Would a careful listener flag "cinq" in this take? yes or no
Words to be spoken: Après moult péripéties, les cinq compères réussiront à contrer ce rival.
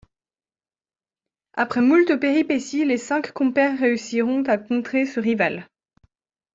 no